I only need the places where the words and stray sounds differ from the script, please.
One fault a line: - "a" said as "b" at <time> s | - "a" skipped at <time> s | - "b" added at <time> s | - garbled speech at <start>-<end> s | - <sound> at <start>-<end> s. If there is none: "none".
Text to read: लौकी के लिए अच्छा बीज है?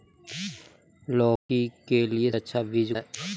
- dropout at 1.4-1.5 s